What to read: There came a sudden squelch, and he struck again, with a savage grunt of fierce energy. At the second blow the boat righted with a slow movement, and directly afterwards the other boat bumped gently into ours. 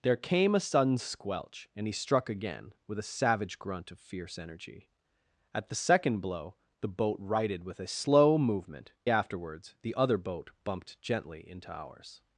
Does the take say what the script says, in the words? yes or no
no